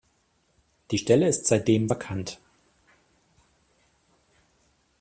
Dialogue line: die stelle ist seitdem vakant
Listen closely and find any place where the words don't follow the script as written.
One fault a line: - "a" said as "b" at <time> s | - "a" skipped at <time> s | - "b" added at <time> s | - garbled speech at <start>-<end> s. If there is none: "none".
none